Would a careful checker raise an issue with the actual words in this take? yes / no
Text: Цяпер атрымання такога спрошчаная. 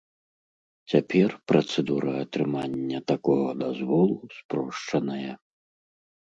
yes